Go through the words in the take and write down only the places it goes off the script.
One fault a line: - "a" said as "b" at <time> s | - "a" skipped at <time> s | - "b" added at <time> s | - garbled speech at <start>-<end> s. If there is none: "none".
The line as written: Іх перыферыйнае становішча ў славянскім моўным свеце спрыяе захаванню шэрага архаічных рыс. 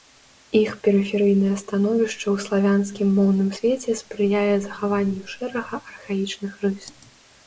none